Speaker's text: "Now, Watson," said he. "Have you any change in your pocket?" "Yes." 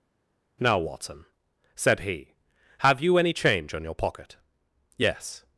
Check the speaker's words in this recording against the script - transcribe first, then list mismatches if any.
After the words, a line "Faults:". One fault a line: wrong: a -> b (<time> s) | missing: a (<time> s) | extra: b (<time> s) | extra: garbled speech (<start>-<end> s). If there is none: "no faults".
"Now, Watson," said he. "Have you any change on your pocket?" "Yes."
Faults:
wrong: in -> on (3.7 s)